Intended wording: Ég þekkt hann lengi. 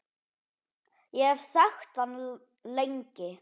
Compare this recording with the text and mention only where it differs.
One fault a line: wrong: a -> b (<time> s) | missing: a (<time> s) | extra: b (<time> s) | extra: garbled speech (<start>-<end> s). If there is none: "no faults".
extra: hef (1.3 s)